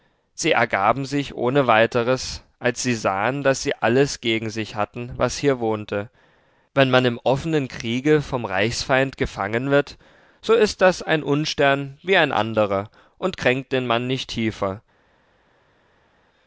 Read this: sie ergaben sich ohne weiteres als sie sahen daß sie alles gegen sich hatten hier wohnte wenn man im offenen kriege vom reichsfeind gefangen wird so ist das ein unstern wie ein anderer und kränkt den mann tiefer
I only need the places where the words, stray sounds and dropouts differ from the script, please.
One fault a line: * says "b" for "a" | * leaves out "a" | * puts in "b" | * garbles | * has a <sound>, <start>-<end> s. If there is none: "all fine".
* puts in "was"
* puts in "nicht"